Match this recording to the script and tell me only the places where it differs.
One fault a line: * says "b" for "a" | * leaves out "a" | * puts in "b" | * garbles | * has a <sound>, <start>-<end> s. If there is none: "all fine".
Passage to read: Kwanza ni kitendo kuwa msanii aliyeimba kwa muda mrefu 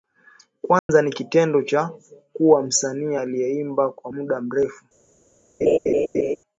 * has a dropout, 0.8-0.9 s
* puts in "cha"
* has a laugh, 5.6-6.4 s